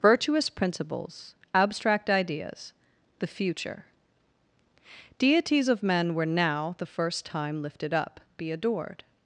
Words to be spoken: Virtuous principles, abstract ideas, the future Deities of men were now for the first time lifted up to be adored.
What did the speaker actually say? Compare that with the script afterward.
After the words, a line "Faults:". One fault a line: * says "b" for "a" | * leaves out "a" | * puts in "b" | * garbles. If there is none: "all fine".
Virtuous principles, abstract ideas, the future Deities of men were now the first time lifted up be adored.
Faults:
* leaves out "for"
* leaves out "to"